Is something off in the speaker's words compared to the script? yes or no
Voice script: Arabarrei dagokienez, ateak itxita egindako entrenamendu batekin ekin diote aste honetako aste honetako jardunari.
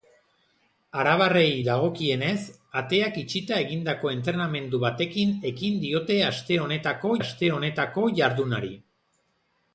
no